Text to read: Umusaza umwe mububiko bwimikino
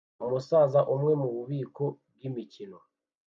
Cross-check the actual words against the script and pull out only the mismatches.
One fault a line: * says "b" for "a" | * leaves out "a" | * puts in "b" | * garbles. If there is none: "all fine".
all fine